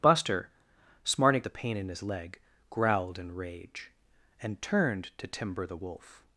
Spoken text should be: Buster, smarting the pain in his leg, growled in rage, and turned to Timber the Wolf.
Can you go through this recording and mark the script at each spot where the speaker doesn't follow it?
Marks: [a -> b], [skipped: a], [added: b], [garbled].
Buster, smarting the pain in his leg, growled in rage, and turned to Timber the Wolf.